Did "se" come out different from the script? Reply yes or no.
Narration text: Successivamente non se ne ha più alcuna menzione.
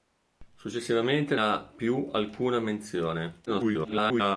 yes